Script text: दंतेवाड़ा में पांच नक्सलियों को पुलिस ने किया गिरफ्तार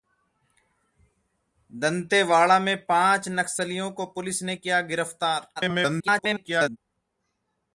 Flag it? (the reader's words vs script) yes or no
yes